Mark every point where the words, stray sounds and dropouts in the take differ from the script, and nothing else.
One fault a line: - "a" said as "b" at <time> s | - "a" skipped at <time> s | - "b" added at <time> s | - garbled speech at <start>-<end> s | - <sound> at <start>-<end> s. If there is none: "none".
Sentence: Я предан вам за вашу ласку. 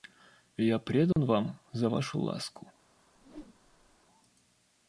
- dropout at 1.1-1.2 s
- whoosh at 3.1-4.0 s